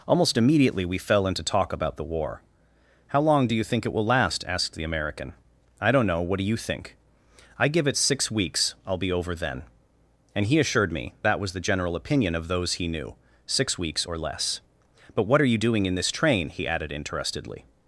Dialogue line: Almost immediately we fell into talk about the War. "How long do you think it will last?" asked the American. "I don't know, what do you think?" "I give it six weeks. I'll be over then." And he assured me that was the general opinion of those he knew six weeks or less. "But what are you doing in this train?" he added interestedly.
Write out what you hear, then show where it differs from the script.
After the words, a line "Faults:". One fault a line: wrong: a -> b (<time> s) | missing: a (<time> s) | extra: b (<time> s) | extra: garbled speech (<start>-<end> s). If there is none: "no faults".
Almost immediately we fell into talk about the War. "How long do you think it will last?" asked the American. "I don't know, what do you think?" "I give it six weeks. I'll be over then." And he assured me that was the general opinion of those he knew six weeks or less. "But what are you doing in this train?" he added interestedly.
Faults:
no faults